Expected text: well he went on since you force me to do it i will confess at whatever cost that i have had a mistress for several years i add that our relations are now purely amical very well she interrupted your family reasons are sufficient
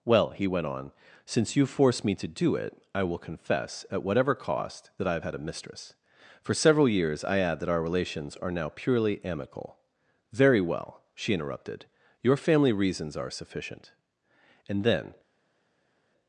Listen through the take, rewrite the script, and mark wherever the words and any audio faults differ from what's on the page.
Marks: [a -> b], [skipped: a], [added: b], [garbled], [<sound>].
well he went on since you force me to do it i will confess at whatever cost that i have had a mistress for several years i add that our relations are now purely amical very well she interrupted your family reasons are sufficient [added: and then]